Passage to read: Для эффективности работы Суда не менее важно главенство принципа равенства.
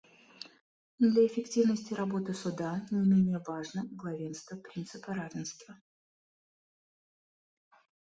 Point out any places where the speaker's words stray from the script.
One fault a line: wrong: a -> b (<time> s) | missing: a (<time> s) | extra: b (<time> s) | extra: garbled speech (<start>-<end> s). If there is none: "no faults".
no faults